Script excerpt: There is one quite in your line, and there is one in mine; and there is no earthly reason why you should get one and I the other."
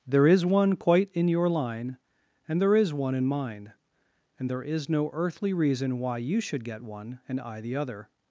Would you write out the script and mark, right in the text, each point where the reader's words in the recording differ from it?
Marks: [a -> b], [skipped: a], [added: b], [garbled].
There is one quite in your line, and there is one in mine; and there is no earthly reason why you should get one and I the other."